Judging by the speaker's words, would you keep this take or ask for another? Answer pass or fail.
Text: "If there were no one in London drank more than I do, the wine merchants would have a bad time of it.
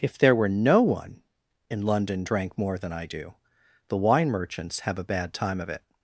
fail